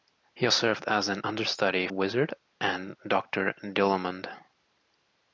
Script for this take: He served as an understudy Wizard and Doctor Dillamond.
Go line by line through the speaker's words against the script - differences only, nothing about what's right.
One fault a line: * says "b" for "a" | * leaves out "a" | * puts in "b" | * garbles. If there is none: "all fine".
all fine